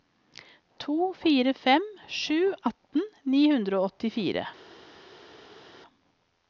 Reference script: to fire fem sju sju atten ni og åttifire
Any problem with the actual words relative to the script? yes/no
yes